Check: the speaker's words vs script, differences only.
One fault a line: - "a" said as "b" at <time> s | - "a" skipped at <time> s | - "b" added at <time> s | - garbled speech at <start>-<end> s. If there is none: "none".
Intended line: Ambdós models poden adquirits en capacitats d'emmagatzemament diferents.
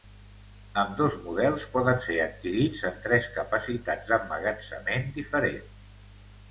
- "ser" added at 2.1 s
- "tres" added at 3.0 s